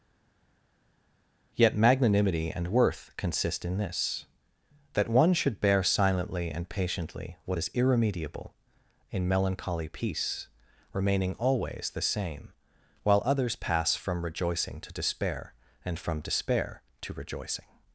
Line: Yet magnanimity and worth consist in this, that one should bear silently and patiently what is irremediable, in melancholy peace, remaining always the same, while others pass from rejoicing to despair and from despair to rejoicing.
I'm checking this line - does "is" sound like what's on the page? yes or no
yes